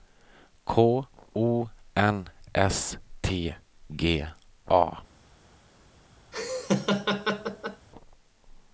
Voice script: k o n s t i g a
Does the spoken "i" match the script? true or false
false